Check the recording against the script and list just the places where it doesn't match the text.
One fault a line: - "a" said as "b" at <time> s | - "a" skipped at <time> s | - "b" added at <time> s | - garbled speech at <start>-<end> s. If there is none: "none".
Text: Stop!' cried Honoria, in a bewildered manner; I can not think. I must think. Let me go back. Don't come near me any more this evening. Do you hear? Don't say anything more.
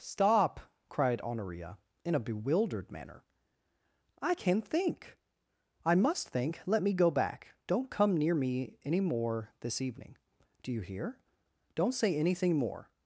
- "not" skipped at 4.6 s